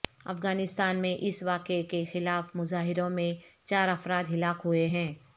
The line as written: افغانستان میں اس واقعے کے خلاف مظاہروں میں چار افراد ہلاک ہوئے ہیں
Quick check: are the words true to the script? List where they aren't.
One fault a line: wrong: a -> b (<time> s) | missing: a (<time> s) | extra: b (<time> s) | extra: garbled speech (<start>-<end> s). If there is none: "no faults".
no faults